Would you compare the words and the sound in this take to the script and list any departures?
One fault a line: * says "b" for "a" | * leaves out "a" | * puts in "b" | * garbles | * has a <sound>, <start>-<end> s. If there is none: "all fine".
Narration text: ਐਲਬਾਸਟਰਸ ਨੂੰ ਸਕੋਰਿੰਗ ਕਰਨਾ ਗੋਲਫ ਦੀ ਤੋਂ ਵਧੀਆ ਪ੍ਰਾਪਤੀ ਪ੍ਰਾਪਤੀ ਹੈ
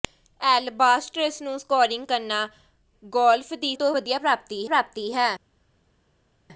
all fine